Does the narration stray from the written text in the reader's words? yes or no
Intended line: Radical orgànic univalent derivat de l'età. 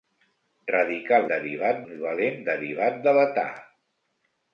yes